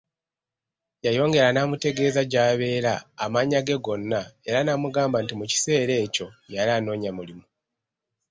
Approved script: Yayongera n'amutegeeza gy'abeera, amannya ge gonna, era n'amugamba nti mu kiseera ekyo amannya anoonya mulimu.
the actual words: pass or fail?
fail